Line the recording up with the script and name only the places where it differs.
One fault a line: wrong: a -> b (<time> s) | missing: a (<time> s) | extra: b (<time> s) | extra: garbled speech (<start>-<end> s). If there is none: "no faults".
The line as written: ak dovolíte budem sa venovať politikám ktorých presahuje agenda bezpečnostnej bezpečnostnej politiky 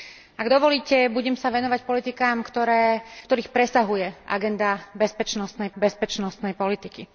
no faults